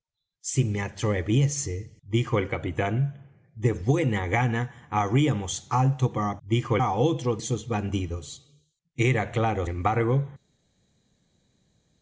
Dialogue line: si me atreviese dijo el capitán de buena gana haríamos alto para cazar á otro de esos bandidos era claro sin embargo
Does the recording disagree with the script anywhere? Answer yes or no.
yes